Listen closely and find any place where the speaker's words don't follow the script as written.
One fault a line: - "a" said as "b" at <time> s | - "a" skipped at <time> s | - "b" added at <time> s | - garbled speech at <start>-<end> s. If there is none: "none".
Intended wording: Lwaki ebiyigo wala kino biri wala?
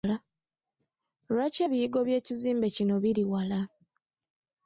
- "wala" said as "by'ekizimbe" at 2.1 s